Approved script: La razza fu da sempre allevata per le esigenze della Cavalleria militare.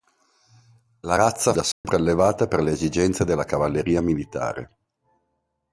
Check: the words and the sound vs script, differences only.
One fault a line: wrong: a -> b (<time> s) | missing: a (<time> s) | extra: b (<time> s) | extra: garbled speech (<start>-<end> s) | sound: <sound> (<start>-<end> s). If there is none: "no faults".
missing: fu (1.5 s)
sound: dropout (1.7-1.8 s)